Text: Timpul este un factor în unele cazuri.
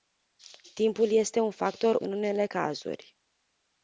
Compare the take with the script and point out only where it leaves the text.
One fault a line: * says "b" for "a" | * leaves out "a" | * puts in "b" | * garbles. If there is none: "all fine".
all fine